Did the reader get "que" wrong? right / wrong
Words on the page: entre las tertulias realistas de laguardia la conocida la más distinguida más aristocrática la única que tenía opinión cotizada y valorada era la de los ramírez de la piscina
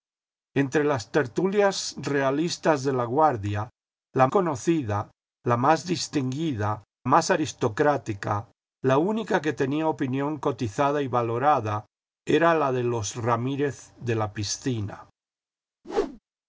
right